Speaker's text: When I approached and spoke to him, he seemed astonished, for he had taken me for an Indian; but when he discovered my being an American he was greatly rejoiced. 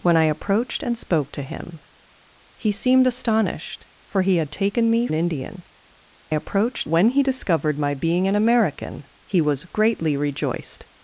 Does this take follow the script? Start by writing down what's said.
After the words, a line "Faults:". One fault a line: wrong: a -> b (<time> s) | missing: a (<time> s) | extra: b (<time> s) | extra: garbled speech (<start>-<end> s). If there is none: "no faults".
When I approached and spoke to him, he seemed astonished, for he had taken me an Indian; approached when he discovered my being an American he was greatly rejoiced.
Faults:
missing: for (5.1 s)
wrong: but -> approached (6.3 s)